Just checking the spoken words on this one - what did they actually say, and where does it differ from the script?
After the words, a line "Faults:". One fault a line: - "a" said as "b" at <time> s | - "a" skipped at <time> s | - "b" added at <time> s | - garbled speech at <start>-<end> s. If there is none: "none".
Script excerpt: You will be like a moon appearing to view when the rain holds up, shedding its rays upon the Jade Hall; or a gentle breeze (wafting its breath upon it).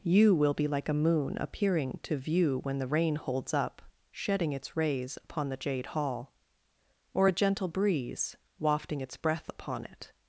You will be like a moon appearing to view when the rain holds up, shedding its rays upon the Jade Hall; or a gentle breeze (wafting its breath upon it).
Faults:
none